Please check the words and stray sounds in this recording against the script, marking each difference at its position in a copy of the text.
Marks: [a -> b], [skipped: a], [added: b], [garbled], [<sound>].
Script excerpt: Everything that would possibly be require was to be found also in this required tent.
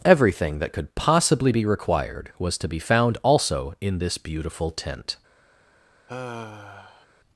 Everything that [would -> could] possibly be [require -> required] was to be found also in this [required -> beautiful] tent. [sigh]